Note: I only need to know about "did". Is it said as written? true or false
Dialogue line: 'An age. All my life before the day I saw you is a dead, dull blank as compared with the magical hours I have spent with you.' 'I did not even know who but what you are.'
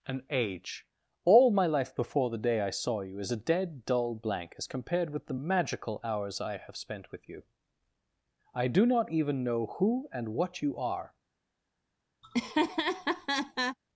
false